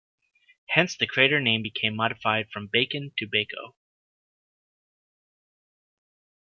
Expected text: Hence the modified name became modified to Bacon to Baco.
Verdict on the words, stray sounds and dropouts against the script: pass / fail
fail